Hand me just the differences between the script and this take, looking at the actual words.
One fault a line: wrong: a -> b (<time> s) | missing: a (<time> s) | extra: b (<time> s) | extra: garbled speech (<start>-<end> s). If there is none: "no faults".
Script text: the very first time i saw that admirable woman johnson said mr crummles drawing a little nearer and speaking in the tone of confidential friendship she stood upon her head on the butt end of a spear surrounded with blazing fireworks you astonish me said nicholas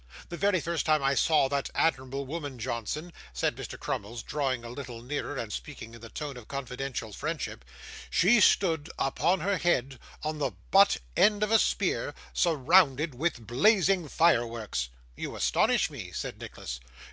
no faults